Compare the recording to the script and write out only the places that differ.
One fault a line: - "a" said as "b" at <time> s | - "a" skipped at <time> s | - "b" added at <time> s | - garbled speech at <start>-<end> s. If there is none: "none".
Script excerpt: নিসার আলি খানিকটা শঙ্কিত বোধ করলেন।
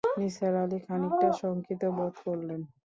none